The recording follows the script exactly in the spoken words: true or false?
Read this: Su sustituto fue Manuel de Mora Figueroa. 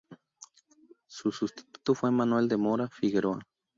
true